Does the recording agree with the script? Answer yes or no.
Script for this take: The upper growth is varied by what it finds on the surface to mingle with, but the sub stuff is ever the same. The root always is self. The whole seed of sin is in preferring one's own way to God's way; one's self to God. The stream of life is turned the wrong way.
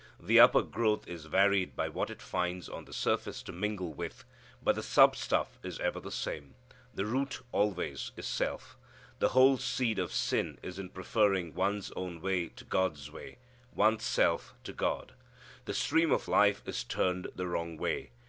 yes